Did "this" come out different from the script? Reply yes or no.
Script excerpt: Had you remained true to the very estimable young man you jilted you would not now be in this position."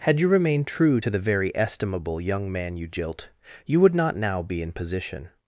yes